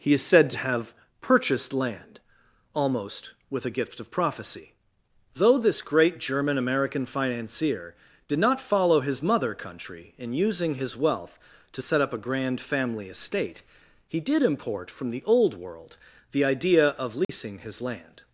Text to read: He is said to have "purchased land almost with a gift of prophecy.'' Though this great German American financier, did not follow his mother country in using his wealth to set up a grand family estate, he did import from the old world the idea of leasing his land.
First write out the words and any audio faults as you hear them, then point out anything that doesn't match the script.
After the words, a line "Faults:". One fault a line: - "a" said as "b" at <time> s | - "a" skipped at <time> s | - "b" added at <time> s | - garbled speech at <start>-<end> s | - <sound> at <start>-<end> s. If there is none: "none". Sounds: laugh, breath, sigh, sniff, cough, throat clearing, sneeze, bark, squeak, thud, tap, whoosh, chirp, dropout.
He is said to have "purchased land almost with a gift of prophecy.'' Though this great German American financier, did not follow his mother country in using his wealth to set up a grand family estate, he did import from the old world the idea of leasing his land.
Faults:
- dropout at 17.2-17.3 s